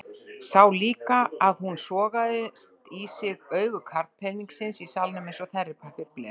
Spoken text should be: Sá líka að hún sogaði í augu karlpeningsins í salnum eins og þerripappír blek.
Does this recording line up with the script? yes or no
no